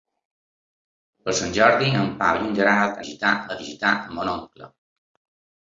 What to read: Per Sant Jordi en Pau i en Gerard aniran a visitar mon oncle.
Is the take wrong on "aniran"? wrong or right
wrong